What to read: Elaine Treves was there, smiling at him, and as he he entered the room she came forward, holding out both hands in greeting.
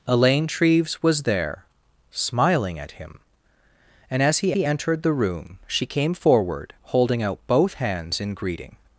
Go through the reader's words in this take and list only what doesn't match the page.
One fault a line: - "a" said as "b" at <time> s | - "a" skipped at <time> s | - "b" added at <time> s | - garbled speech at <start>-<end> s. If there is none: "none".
none